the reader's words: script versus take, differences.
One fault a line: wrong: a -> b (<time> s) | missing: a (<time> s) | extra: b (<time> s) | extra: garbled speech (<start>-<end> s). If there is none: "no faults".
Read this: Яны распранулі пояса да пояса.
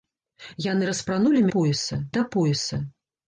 no faults